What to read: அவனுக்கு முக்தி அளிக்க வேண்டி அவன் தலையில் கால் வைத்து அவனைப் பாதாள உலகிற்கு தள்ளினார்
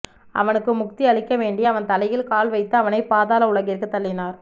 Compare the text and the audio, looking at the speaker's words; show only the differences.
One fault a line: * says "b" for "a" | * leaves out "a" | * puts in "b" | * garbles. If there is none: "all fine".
all fine